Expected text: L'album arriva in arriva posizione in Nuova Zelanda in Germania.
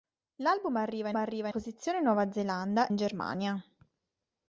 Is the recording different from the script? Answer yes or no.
no